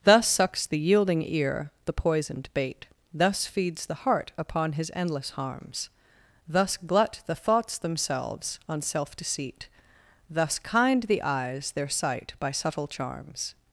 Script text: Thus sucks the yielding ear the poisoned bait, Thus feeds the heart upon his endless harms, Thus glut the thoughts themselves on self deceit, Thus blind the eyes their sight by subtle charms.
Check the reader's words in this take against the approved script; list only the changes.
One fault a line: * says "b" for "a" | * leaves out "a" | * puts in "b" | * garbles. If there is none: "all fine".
* says "kind" for "blind"